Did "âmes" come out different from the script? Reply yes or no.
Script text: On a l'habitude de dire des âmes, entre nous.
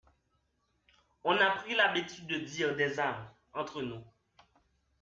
no